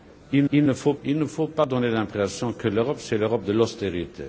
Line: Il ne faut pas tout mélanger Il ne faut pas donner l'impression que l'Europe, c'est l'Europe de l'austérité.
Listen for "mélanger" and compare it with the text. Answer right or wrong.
wrong